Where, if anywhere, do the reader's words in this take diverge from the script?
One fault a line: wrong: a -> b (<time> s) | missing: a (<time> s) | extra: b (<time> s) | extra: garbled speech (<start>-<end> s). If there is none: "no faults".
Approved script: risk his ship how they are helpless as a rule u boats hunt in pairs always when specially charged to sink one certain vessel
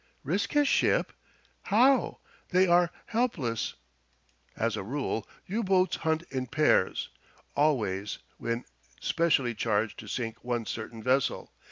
no faults